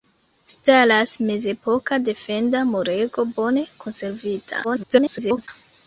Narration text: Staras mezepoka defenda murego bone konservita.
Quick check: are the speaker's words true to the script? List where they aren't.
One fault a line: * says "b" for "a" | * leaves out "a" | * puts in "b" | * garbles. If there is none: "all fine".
* garbles